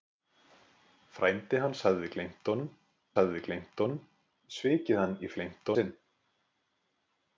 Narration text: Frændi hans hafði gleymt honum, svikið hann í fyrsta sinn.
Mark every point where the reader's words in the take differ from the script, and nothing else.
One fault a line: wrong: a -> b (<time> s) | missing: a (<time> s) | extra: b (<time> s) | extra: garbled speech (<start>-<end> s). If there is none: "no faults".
extra: hafði gleymt honum (3.2 s)
wrong: fyrsta -> gleymt (5.4 s)